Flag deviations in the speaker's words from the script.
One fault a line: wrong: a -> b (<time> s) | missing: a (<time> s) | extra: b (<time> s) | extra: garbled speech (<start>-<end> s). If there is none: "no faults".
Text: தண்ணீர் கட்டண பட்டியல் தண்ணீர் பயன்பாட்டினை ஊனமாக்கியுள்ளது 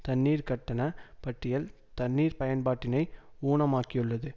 no faults